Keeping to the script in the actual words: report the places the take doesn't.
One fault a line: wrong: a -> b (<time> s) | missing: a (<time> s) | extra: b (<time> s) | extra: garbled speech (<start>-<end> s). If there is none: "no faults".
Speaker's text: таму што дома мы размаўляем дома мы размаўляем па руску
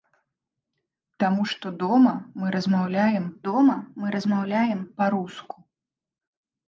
no faults